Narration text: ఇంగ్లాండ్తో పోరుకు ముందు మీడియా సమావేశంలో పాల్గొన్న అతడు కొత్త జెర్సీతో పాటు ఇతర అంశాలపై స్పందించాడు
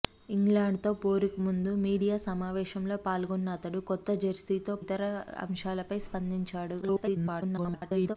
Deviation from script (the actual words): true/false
true